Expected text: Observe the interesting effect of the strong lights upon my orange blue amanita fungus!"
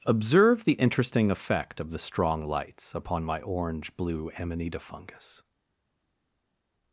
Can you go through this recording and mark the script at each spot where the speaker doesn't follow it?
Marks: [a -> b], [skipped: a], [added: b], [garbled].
Observe the interesting effect of the strong lights upon my orange blue amanita fungus!"